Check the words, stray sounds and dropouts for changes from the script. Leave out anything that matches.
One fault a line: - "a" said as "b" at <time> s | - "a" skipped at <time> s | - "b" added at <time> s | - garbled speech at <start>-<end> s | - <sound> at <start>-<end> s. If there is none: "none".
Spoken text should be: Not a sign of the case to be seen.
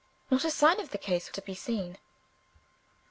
none